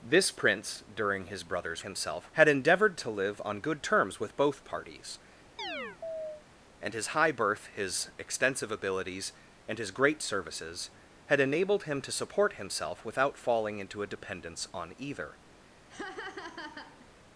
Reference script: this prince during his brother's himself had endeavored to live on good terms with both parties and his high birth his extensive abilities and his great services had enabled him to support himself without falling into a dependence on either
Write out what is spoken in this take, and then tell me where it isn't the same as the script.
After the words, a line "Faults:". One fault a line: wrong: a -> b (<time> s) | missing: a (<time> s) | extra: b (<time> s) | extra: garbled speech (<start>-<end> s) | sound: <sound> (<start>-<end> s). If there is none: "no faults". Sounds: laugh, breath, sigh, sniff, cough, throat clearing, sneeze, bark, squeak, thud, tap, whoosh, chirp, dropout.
this prince during his brother's himself had endeavored to live on good terms with both parties and his high birth his extensive abilities and his great services had enabled him to support himself without falling into a dependence on either
Faults:
sound: chirp (5.6-6.4 s)
sound: laugh (15.9-17.1 s)